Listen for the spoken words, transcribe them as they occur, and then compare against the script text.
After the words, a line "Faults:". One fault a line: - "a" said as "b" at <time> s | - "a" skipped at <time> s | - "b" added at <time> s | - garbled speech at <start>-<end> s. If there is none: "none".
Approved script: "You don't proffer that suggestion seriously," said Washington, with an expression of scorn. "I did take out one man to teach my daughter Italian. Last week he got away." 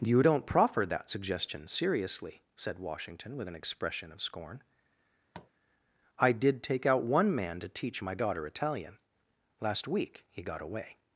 "You don't proffer that suggestion seriously," said Washington, with an expression of scorn. "I did take out one man to teach my daughter Italian. Last week he got away."
Faults:
none